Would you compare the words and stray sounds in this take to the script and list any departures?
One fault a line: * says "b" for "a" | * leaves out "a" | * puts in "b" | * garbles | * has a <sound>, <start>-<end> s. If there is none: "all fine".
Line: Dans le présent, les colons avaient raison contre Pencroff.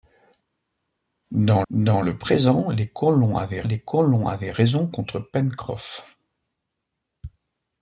* puts in "dans"
* puts in "les colons avaient"